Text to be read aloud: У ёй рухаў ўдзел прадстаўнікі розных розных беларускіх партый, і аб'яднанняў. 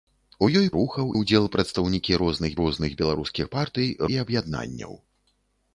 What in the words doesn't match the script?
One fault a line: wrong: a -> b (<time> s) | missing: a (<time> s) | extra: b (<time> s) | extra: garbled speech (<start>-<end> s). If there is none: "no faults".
no faults